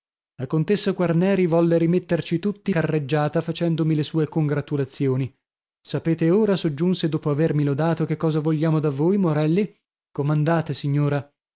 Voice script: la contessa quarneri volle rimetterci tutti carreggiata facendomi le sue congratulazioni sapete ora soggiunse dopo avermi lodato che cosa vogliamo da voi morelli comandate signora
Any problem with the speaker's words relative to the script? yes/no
no